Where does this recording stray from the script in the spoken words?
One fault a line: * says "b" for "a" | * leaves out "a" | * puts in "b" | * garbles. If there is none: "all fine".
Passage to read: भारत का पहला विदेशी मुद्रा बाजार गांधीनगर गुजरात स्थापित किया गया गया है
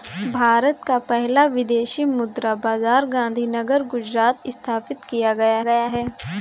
all fine